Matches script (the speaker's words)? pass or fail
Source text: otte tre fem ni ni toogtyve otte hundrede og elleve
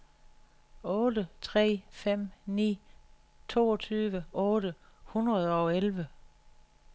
fail